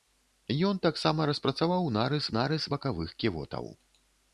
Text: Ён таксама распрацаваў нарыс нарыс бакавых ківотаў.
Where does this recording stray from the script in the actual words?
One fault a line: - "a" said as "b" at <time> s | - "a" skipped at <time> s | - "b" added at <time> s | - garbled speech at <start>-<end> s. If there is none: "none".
none